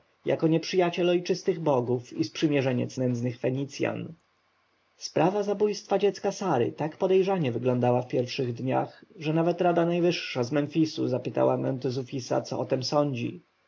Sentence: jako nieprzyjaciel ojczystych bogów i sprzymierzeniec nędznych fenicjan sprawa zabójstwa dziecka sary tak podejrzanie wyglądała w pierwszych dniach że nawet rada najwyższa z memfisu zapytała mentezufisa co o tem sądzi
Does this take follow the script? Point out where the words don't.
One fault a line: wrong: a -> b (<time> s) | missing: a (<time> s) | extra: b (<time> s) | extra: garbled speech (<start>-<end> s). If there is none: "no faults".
no faults